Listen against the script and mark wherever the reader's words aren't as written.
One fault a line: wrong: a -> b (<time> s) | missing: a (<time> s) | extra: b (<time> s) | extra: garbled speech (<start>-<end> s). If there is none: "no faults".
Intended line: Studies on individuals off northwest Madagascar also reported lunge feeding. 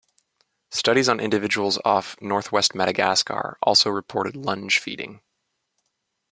no faults